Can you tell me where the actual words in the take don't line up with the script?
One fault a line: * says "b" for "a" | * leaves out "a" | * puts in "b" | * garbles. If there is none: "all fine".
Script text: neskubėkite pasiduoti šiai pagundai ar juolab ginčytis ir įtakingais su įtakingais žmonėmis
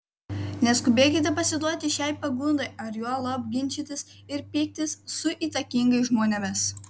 * says "pyktis" for "įtakingais"